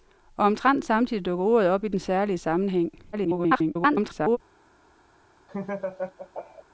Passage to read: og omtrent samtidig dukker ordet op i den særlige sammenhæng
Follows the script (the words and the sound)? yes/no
no